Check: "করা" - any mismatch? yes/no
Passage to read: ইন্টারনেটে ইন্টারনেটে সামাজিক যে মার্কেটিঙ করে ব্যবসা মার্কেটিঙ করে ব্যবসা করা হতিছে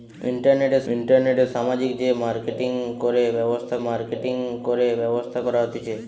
no